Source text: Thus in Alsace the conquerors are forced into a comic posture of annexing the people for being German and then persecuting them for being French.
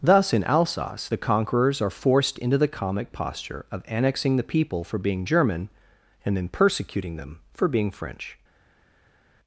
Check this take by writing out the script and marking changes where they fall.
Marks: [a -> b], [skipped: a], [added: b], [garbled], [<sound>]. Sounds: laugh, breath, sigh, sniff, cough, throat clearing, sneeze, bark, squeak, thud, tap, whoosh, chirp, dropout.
Thus in Alsace the conquerors are forced into [a -> the] comic posture of annexing the people for being German and then persecuting them for being French.